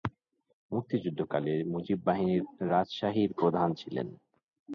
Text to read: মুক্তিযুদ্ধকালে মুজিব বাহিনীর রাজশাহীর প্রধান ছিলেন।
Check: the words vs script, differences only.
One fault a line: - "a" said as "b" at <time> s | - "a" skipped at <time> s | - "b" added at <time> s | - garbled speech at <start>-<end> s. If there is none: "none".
none